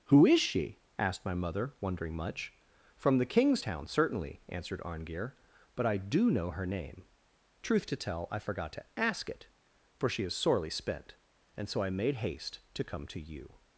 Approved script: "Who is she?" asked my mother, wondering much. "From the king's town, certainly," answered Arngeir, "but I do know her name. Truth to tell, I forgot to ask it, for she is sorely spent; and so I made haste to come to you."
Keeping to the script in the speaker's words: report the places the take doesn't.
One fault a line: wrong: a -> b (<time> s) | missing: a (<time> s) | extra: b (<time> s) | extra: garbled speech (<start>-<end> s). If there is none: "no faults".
no faults